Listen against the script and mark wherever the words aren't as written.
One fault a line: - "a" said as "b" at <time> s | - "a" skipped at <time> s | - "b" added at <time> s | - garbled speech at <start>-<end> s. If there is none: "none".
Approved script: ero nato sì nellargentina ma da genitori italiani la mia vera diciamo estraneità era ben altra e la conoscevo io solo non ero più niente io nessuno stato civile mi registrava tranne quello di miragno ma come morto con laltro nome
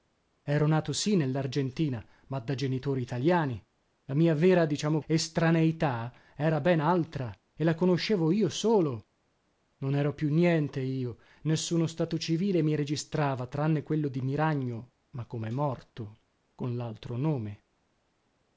none